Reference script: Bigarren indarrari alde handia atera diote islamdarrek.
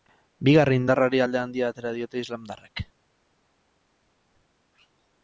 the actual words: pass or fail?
pass